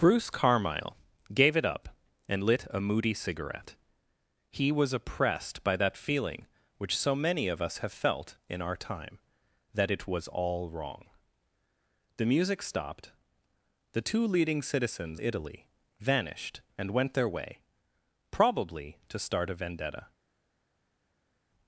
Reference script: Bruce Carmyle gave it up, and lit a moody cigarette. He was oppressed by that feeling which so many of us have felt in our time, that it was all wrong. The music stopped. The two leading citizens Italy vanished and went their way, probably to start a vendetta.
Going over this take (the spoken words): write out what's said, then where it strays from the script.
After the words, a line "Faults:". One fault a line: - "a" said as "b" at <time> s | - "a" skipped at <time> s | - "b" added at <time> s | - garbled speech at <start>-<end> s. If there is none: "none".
Bruce Carmyle gave it up, and lit a moody cigarette. He was oppressed by that feeling which so many of us have felt in our time, that it was all wrong. The music stopped. The two leading citizens Italy vanished and went their way, probably to start a vendetta.
Faults:
none